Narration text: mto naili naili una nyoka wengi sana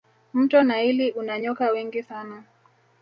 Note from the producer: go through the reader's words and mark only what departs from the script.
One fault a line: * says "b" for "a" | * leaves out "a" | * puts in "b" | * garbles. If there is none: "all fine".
* leaves out "naili"